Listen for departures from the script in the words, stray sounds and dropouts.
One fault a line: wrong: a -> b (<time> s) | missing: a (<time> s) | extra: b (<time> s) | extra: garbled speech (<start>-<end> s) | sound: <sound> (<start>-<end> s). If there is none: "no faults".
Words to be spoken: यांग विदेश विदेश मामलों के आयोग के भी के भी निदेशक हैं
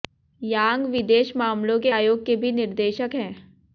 missing: विदेश (1.3 s)
missing: के भी (2.5 s)